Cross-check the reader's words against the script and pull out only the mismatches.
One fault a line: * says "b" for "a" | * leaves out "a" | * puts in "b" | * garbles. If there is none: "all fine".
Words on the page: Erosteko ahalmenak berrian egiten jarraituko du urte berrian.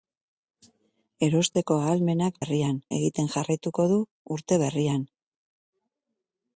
all fine